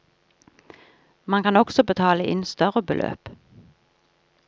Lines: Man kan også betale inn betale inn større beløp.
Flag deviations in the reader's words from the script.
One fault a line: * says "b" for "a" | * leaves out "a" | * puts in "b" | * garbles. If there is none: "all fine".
* leaves out "betale inn"